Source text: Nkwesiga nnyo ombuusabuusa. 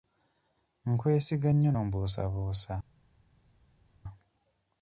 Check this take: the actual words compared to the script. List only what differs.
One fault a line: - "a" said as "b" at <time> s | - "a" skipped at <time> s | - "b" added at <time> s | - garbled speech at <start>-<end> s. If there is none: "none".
none